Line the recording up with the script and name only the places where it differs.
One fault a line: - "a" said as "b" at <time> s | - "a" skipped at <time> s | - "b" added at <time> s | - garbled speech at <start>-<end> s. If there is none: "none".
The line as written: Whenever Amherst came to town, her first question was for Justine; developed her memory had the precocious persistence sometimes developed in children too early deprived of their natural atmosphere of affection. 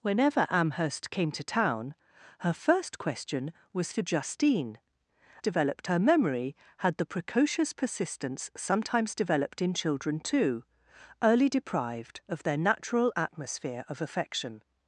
none